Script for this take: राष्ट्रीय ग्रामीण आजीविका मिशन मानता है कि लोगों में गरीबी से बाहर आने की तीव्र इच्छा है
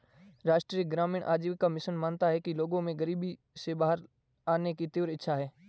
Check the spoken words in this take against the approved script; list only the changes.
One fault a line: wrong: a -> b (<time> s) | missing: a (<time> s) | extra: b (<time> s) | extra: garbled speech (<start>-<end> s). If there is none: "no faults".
no faults